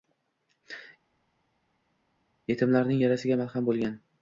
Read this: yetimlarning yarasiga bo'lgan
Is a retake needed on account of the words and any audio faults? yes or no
yes